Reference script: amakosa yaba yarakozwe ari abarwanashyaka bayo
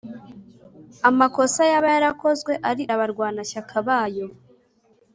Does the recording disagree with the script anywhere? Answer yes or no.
no